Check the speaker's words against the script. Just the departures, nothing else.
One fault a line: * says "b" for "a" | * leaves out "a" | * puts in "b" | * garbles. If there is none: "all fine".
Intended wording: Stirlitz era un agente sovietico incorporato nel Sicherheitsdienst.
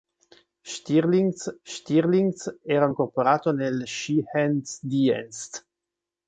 * puts in "stirlitz"
* leaves out "agente sovietico"